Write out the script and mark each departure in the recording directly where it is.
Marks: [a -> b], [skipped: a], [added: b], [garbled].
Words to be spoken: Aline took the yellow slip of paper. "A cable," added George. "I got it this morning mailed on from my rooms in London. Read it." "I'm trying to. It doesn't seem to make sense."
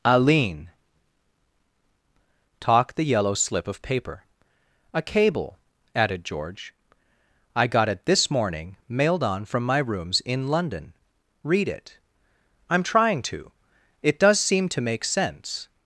Aline [took -> talk] the yellow slip of paper. "A cable," added George. "I got it this morning mailed on from my rooms in London. Read it." "I'm trying to. It [doesn't -> does] seem to make sense."